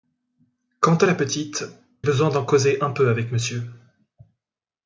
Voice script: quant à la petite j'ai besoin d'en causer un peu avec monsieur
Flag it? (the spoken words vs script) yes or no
yes